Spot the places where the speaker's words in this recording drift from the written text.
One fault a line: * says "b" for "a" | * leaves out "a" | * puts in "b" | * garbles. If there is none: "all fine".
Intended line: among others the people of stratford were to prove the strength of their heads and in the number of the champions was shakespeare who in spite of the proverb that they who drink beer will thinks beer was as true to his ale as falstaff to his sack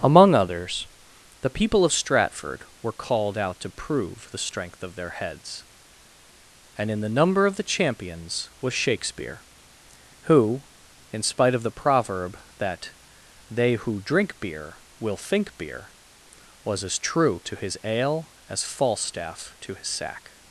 * puts in "called out"
* says "think" for "thinks"